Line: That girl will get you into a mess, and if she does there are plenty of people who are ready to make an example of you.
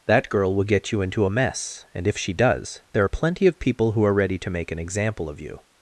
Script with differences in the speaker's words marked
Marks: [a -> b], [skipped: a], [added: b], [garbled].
That girl will get you into a mess, and if she does there are plenty of people who are ready to make an example of you.